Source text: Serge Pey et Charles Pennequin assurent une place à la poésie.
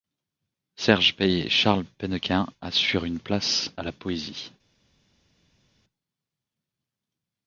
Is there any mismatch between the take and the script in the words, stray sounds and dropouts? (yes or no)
no